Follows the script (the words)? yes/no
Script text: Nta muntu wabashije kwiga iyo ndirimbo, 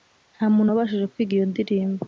yes